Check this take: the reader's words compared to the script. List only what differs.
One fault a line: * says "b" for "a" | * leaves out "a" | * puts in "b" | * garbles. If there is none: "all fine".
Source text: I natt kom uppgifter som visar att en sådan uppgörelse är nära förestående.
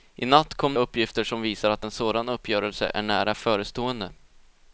all fine